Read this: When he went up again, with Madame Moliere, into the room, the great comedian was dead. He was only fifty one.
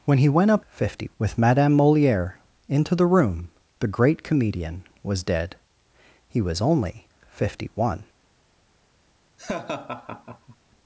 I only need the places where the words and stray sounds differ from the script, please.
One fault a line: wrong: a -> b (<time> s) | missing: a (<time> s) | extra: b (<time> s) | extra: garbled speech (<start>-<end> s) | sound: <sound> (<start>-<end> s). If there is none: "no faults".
wrong: again -> fifty (0.7 s)
sound: laugh (9.4-10.6 s)